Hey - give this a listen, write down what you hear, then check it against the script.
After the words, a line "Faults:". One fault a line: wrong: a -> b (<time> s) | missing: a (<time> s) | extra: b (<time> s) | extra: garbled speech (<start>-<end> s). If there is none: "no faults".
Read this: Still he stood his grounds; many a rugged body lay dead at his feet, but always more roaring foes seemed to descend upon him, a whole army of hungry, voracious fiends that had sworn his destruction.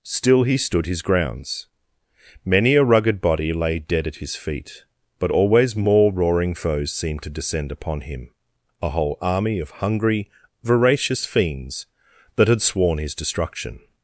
Still he stood his grounds; many a rugged body lay dead at his feet, but always more roaring foes seemed to descend upon him, a whole army of hungry, voracious fiends that had sworn his destruction.
Faults:
no faults